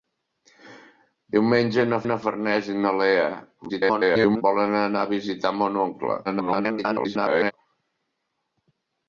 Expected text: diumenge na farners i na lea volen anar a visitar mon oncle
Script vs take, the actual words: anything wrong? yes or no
yes